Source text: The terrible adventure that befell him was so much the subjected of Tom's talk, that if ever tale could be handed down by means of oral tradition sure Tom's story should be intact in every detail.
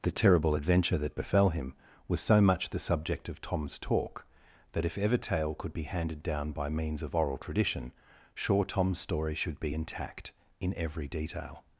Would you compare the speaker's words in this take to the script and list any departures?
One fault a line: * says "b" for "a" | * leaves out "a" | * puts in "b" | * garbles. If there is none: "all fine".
* says "subject" for "subjected"